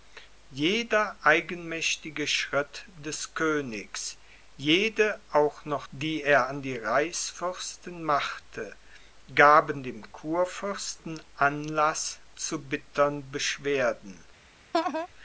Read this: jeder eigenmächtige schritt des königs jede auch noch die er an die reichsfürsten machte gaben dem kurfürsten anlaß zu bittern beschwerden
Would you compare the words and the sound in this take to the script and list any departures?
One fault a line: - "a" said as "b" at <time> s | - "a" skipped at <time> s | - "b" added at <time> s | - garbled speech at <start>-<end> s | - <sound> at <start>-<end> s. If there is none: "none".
- laugh at 14.7-15.1 s